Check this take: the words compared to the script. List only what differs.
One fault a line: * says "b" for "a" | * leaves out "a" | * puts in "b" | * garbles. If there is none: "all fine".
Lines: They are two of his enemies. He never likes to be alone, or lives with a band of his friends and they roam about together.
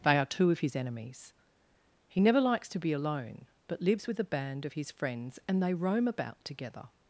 * says "but" for "or"